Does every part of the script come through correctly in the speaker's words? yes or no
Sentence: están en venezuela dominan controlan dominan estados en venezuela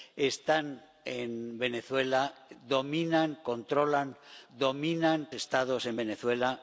yes